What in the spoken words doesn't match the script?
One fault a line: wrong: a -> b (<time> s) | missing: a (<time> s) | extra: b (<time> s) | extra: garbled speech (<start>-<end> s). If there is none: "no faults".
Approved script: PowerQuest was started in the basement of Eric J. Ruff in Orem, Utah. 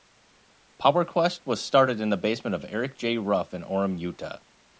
no faults